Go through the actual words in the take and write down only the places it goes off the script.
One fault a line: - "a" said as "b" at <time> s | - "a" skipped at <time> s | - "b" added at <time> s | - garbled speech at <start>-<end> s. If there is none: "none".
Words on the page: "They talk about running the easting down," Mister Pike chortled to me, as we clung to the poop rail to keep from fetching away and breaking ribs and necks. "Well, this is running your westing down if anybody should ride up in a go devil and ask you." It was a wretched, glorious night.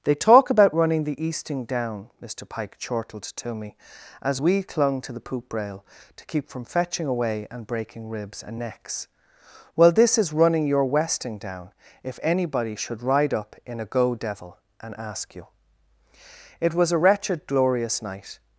none